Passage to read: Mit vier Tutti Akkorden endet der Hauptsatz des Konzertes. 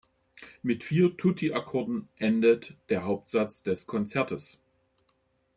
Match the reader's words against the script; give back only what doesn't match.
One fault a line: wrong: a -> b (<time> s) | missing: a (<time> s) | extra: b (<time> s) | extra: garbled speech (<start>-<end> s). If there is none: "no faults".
no faults